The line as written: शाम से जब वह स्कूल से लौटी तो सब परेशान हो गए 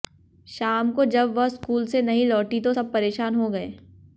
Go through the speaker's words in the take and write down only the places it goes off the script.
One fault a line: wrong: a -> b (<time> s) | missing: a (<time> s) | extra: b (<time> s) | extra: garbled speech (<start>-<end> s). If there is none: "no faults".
wrong: से -> को (0.9 s)
extra: नहीं (2.0 s)